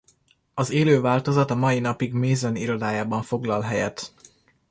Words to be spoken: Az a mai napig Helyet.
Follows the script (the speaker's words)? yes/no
no